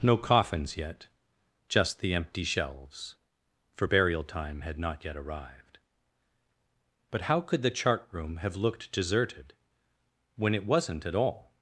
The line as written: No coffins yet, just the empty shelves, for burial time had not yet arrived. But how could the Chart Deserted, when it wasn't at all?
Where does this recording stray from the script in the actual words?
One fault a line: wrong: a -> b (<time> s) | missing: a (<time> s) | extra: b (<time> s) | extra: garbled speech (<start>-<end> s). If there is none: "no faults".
extra: Room have looked (8.1 s)